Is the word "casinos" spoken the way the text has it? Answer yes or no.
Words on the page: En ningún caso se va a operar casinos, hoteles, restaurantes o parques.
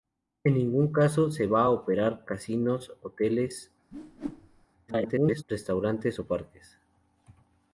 yes